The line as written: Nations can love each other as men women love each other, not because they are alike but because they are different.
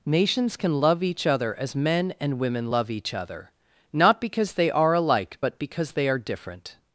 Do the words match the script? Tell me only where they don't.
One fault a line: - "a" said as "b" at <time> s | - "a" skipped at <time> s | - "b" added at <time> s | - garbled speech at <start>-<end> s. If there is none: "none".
- "and" added at 2.2 s